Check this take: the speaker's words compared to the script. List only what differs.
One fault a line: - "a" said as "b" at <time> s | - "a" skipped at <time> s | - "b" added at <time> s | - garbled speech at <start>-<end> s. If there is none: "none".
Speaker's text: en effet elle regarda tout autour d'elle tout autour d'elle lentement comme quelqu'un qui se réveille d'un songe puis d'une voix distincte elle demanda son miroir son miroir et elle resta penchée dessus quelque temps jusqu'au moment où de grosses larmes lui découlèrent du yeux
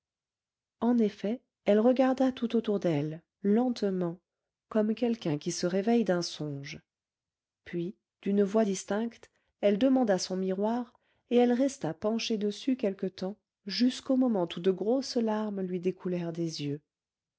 - "tout autour d'elle" skipped at 3.2 s
- "son miroir" skipped at 10.9 s
- "du" said as "des" at 16.3 s